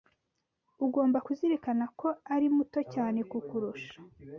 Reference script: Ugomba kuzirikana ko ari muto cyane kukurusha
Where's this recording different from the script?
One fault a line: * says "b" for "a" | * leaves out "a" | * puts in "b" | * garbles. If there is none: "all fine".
all fine